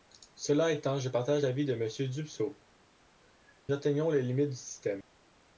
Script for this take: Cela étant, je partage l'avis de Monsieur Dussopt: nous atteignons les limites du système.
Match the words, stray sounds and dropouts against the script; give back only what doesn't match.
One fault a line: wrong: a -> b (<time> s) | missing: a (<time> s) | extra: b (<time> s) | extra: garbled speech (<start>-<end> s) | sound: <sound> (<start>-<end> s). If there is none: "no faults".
missing: nous (2.6 s)